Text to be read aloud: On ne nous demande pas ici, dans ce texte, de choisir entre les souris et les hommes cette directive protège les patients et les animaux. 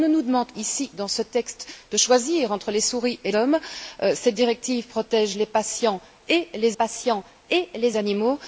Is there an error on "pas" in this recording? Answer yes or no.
yes